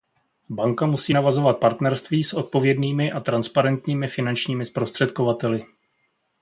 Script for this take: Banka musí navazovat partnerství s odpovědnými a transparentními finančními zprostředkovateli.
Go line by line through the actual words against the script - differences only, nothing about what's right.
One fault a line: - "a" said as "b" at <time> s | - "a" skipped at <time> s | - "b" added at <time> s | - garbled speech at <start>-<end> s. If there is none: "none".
none